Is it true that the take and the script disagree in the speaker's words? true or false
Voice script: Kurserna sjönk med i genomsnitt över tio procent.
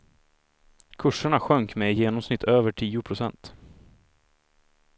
false